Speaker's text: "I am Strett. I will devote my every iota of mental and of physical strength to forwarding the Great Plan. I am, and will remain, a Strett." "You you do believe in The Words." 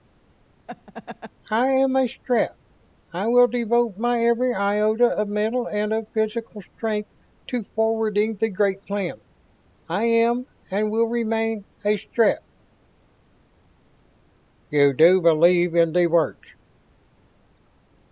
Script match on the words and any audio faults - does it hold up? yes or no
no